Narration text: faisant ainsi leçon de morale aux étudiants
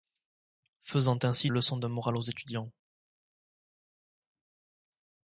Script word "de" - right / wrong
right